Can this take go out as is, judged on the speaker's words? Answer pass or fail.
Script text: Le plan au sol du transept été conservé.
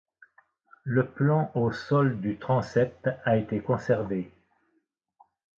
fail